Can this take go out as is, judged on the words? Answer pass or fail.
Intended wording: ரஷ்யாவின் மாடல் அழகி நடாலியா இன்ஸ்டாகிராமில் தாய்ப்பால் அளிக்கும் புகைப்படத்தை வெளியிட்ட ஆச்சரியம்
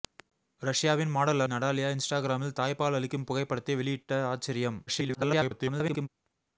fail